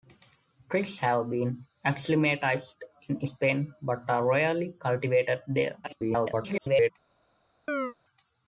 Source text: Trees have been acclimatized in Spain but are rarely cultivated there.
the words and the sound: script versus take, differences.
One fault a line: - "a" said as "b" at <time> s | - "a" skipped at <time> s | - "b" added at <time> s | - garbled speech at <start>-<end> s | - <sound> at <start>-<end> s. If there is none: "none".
- garbled speech at 5.8-6.9 s
- chirp at 7.7-7.9 s